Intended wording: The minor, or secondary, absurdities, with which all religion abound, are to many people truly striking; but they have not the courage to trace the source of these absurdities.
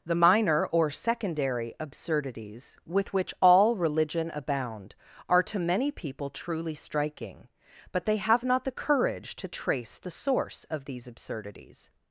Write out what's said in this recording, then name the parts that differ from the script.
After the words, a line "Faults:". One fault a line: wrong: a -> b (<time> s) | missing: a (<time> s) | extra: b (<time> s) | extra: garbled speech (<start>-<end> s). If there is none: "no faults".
The minor, or secondary, absurdities, with which all religion abound, are to many people truly striking; but they have not the courage to trace the source of these absurdities.
Faults:
no faults